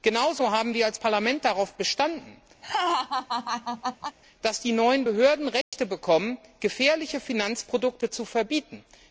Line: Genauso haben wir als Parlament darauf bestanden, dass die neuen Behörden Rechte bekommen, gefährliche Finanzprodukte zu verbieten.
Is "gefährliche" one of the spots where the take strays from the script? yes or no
no